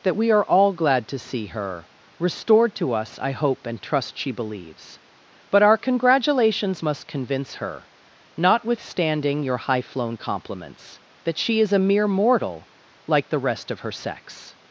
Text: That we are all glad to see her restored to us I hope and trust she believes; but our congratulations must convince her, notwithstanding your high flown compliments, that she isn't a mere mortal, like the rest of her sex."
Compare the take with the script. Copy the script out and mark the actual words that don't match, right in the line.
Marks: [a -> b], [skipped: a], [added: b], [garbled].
That we are all glad to see her restored to us I hope and trust she believes; but our congratulations must convince her, notwithstanding your high flown compliments, that she [isn't -> is] a mere mortal, like the rest of her sex."